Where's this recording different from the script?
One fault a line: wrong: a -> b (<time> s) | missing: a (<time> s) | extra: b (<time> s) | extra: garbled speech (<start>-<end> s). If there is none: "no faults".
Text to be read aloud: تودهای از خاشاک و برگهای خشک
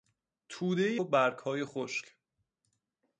missing: از خاشاک (1.0 s)